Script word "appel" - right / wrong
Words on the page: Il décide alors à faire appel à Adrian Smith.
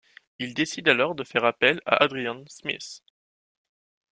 right